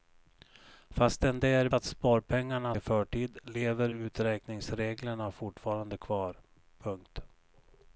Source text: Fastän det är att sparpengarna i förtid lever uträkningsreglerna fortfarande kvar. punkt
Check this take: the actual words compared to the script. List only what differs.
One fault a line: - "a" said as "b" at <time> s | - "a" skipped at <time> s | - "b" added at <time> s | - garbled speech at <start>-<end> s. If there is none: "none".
none